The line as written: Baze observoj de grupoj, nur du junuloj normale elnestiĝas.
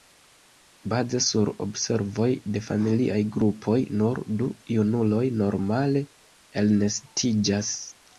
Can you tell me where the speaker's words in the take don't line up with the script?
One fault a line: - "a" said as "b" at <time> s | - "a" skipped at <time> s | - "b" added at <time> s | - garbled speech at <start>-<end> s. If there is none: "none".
- "sur" added at 1.2 s
- "familiaj" added at 2.7 s